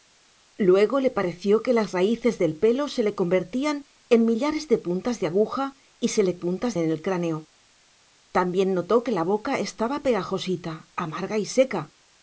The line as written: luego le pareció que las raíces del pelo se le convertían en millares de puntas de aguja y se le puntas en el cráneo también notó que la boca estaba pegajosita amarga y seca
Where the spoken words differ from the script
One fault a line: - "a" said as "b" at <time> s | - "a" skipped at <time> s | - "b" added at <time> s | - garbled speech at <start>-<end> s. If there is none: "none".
none